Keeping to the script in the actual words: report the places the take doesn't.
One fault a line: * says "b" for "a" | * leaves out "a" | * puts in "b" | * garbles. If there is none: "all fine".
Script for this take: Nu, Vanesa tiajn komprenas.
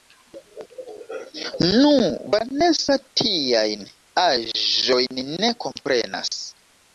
* puts in "aĵojn ne"